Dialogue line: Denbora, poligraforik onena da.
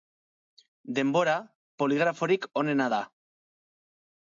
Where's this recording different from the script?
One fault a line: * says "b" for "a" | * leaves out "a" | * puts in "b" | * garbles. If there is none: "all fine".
all fine